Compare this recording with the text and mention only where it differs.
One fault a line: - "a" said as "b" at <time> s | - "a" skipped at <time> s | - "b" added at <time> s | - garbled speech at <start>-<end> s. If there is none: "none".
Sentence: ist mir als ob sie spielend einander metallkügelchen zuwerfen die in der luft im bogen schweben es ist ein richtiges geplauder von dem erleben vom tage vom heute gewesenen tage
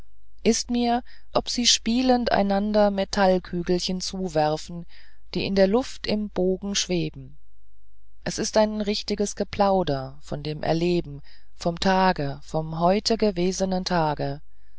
- "als" skipped at 1.0 s